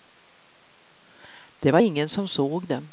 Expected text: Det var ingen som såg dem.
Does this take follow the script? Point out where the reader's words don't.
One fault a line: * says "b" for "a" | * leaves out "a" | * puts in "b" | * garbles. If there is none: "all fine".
all fine